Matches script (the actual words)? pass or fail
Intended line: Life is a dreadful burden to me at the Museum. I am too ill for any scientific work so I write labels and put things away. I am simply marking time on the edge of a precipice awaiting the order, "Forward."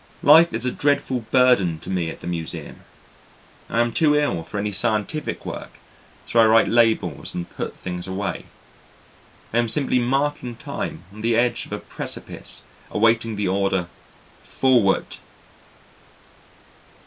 pass